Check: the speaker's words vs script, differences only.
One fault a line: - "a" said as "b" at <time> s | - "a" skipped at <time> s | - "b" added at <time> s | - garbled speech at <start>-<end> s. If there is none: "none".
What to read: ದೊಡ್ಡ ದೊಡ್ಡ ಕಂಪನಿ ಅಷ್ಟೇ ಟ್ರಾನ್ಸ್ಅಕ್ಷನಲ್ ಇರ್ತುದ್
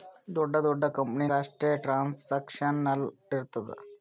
none